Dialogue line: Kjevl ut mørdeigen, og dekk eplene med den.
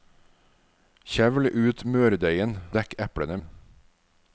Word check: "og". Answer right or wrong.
wrong